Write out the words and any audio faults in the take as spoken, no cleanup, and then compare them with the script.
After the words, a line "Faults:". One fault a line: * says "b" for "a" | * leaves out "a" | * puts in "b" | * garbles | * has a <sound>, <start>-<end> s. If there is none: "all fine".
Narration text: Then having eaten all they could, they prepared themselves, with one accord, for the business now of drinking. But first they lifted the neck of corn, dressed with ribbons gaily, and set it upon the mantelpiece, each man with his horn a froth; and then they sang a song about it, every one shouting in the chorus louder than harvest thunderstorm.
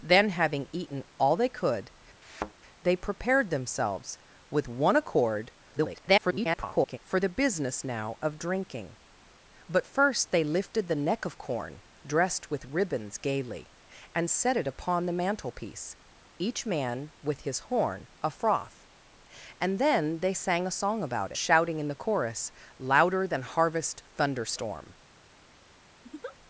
Then having eaten all they could, they prepared themselves, with one accord, [garbled] for the business now of drinking. But first they lifted the neck of corn, dressed with ribbons gaily, and set it upon the mantelpiece, each man with his horn a froth; and then they sang a song about shouting in the chorus louder than harvest thunderstorm.
Faults:
* has a thud, 2.2-2.5 s
* garbles
* leaves out "it every one"
* has a laugh, 26.0-26.4 s